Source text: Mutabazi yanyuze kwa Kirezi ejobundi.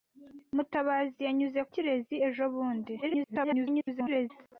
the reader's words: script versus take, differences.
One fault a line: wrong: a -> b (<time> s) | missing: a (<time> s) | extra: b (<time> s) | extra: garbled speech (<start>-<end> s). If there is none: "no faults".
missing: kwa (1.6 s)
extra: garbled speech (3.0-4.3 s)